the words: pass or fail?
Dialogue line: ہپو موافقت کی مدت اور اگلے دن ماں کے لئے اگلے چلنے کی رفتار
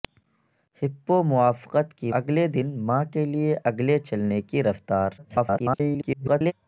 fail